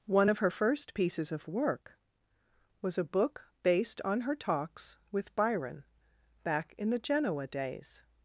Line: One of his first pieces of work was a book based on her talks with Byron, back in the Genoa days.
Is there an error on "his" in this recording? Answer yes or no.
yes